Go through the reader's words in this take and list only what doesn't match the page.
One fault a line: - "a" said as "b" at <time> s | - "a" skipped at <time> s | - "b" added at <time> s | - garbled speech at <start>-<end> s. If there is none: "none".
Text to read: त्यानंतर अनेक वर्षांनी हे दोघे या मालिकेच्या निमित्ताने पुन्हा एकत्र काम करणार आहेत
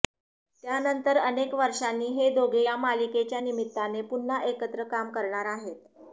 none